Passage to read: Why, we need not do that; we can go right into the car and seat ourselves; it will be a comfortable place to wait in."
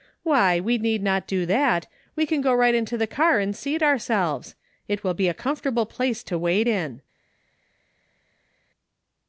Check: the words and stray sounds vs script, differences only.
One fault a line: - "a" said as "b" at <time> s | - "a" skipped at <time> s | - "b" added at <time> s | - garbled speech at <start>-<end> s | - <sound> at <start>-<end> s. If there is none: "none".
none